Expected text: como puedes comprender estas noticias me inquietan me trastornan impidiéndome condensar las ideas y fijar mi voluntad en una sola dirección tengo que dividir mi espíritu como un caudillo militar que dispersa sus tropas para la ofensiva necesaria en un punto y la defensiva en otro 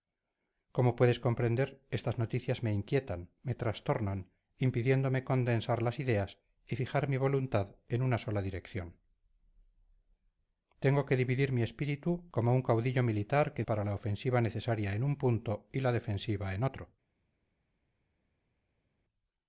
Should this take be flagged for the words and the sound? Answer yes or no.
yes